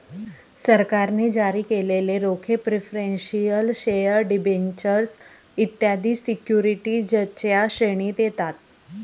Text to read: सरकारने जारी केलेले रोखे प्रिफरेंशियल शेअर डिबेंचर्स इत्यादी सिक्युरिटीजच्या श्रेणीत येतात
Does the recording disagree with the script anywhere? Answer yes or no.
no